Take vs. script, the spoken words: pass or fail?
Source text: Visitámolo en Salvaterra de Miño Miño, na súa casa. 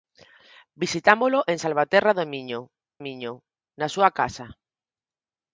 pass